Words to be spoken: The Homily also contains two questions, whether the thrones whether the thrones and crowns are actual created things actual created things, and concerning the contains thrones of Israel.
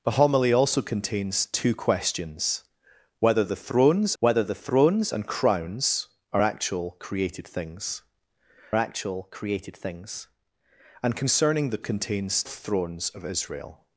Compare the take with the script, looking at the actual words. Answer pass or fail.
pass